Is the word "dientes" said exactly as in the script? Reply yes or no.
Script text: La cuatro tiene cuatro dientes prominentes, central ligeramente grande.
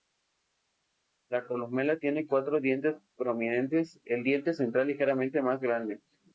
yes